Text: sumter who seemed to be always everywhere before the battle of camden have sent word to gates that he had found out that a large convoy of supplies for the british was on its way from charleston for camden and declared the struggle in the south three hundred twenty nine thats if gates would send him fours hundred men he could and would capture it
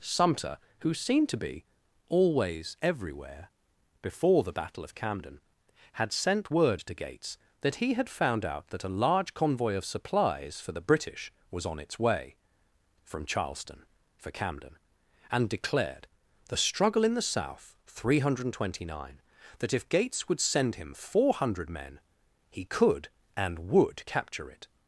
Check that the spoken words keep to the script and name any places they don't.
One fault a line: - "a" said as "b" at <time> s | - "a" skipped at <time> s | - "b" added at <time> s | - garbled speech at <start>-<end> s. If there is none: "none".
- "have" said as "had" at 5.9 s
- "thats" said as "that" at 19.6 s
- "fours" said as "four" at 20.9 s